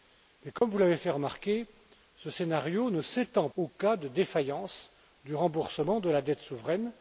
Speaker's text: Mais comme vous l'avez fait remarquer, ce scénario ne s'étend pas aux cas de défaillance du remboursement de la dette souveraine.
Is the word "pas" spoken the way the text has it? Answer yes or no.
no